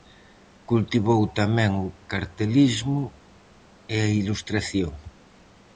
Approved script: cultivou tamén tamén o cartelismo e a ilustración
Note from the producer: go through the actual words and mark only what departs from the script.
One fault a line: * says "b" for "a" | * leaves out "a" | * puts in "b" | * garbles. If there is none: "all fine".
* leaves out "tamén"